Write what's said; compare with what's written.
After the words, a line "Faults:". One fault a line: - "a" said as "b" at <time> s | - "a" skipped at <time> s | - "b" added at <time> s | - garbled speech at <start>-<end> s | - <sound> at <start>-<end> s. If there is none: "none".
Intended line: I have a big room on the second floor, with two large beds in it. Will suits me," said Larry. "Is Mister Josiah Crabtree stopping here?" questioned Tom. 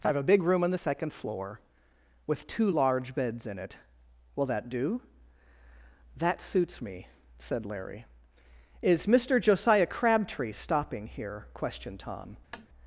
I have a big room on the second floor, with two large beds in it. Will that do?" "That suits me," said Larry. "Is Mister Josiah Crabtree stopping here?" questioned Tom.
Faults:
- "that do That" added at 4.4 s
- tap at 12.5-12.7 s